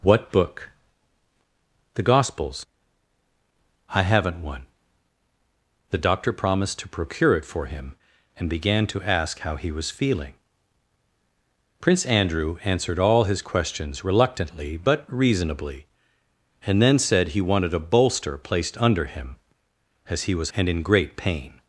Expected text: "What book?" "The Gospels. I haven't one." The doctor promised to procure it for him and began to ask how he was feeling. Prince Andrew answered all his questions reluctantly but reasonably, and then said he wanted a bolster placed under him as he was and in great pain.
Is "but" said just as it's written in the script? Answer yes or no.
yes